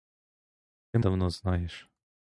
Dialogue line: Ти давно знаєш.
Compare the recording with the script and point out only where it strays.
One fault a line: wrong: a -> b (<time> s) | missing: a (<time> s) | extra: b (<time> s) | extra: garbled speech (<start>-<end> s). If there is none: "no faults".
no faults